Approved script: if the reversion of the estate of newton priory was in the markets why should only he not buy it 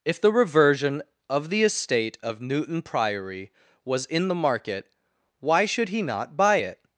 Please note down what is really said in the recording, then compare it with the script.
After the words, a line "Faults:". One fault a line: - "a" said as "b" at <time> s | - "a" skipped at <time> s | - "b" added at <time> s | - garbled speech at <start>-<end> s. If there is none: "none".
if the reversion of the estate of newton priory was in the market why should he not buy it
Faults:
- "markets" said as "market" at 4.3 s
- "only" skipped at 5.9 s